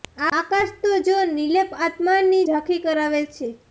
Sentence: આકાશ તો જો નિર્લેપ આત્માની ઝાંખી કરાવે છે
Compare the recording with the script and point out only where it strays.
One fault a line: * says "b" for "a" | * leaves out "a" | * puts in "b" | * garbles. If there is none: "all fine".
all fine